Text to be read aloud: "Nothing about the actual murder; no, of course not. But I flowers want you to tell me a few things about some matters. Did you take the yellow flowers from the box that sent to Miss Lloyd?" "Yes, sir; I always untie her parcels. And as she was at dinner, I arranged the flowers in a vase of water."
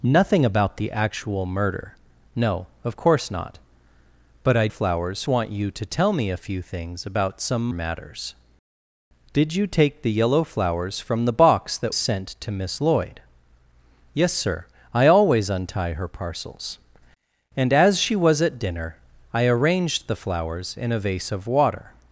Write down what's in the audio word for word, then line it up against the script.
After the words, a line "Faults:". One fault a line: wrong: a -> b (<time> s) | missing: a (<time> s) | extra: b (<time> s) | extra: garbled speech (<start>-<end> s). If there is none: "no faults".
"Nothing about the actual murder; no, of course not. But I flowers want you to tell me a few things about some matters. Did you take the yellow flowers from the box that sent to Miss Lloyd?" "Yes, sir; I always untie her parcels. And as she was at dinner, I arranged the flowers in a vase of water."
Faults:
no faults